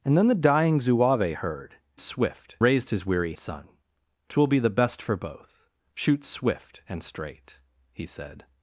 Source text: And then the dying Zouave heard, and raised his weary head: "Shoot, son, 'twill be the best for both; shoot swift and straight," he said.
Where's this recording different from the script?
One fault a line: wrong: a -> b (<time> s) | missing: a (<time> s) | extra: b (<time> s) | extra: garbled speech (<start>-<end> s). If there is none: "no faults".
wrong: and -> swift (2.0 s)
missing: head Shoot (3.3 s)